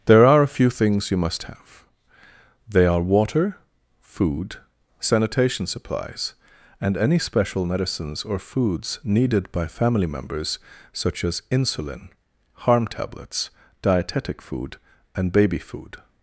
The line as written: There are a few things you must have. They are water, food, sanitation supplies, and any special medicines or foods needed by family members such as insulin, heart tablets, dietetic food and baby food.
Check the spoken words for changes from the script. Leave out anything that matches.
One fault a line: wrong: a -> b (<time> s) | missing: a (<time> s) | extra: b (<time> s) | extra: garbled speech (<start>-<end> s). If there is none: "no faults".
wrong: heart -> harm (12.5 s)